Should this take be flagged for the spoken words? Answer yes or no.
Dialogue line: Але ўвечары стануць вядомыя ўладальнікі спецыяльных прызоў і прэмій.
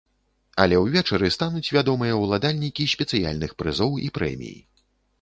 no